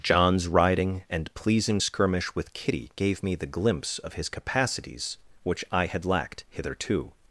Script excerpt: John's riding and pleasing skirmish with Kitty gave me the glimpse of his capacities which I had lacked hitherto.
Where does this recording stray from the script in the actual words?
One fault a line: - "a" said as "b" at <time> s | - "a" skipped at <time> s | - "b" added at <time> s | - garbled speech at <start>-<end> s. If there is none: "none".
none